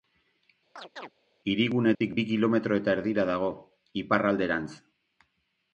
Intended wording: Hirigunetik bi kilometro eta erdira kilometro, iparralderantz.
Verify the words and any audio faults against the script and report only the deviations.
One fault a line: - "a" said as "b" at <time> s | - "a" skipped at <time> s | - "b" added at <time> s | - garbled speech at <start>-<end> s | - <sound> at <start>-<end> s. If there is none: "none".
- chirp at 0.8-1.1 s
- dropout at 1.9-2.0 s
- "kilometro" said as "dago" at 3.3 s